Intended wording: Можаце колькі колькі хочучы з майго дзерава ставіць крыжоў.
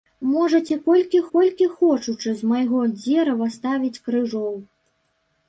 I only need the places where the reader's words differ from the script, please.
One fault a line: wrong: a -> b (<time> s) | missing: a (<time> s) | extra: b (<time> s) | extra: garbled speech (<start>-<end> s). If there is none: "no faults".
no faults